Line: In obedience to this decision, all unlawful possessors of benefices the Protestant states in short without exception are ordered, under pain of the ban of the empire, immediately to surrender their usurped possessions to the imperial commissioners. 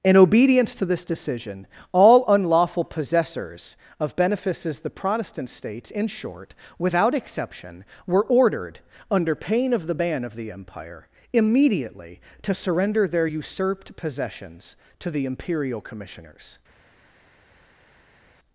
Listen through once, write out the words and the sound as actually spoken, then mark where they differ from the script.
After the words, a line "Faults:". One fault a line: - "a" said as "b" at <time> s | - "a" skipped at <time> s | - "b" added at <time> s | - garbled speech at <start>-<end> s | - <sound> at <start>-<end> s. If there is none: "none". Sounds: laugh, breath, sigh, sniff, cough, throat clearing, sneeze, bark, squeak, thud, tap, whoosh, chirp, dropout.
In obedience to this decision, all unlawful possessors of benefices the Protestant states in short without exception were ordered, under pain of the ban of the empire, immediately to surrender their usurped possessions to the imperial commissioners.
Faults:
- "are" said as "were" at 8.1 s